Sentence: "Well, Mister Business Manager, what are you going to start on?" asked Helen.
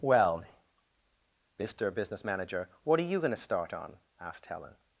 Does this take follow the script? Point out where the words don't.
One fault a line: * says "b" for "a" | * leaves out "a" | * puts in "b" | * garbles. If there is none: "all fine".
all fine